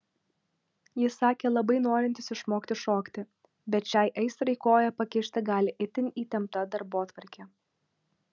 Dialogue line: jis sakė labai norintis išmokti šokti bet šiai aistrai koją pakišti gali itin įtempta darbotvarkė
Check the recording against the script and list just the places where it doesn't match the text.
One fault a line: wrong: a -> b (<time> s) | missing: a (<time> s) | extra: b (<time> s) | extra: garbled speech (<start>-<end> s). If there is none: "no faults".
no faults